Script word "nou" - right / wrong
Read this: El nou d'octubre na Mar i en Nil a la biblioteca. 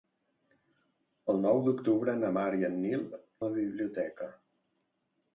right